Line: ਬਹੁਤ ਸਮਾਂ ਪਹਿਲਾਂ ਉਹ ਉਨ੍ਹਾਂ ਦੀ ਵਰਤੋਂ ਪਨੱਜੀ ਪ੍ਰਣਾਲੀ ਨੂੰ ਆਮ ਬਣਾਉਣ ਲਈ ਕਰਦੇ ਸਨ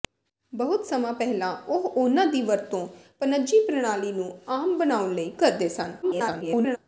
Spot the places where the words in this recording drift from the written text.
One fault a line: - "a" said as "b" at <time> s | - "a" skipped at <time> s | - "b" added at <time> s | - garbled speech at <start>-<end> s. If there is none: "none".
- garbled speech at 6.0-6.8 s